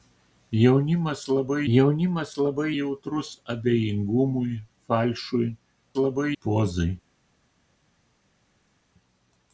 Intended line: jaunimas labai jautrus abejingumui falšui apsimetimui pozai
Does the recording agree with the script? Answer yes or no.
no